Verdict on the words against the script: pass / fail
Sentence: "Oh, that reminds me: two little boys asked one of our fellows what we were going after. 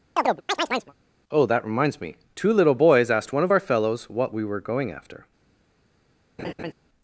pass